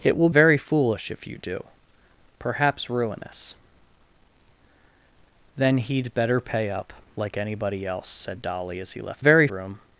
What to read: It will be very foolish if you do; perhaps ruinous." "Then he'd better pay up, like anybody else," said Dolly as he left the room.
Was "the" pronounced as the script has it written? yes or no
no